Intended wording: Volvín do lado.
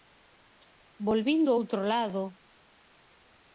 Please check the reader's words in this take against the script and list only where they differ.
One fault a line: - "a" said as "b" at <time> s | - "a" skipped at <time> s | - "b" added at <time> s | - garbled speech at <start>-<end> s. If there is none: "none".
- "outro" added at 1.6 s